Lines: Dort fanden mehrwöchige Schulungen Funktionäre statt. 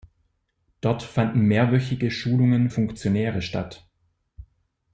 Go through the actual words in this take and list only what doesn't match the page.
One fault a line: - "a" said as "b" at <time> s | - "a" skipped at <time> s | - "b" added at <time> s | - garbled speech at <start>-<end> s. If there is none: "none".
none